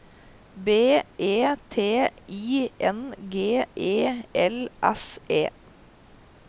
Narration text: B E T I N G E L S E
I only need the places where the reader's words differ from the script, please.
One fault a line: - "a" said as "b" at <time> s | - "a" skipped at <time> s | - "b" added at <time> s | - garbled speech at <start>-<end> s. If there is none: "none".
none